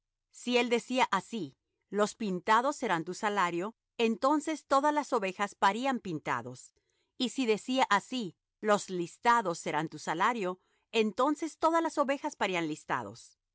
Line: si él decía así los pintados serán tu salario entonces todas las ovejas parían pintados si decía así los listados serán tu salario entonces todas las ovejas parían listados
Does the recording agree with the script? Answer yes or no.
no